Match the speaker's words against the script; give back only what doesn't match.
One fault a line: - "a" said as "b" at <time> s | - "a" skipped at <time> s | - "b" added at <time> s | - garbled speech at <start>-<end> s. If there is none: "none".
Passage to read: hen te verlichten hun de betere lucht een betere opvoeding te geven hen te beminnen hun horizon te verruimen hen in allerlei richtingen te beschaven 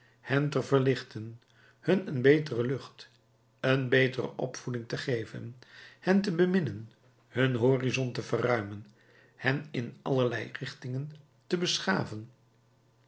- "de" said as "een" at 2.1 s